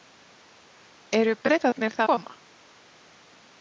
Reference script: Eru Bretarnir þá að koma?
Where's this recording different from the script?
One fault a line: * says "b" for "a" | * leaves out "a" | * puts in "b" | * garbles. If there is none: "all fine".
* leaves out "að"